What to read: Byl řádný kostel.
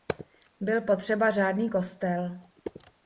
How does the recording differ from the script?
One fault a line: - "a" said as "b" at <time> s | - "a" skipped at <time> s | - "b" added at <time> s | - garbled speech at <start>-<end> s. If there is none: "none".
- "potřeba" added at 0.8 s